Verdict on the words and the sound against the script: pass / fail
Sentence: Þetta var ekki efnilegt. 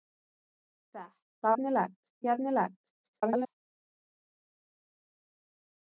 fail